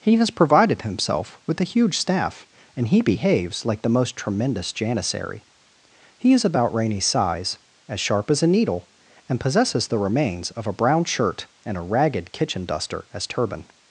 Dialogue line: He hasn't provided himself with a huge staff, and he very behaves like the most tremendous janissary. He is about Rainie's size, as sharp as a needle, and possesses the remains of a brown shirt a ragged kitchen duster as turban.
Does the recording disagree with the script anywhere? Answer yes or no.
yes